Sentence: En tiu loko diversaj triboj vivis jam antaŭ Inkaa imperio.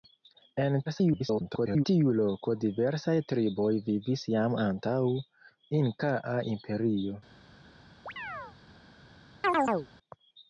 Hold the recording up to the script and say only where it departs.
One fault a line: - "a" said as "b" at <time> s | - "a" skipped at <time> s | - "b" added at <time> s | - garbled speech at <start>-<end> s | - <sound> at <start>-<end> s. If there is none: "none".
- garbled speech at 0.8-1.8 s
- chirp at 8.1-8.6 s
- chirp at 9.4-9.9 s